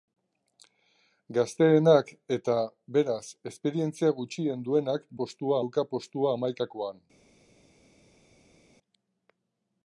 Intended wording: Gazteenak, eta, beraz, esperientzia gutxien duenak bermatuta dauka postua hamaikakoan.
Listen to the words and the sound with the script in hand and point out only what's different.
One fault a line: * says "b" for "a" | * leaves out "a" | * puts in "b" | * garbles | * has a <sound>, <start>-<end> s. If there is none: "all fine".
* says "postua" for "bermatuta"